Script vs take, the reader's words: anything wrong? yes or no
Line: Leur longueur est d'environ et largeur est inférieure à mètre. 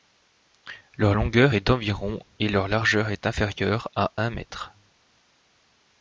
yes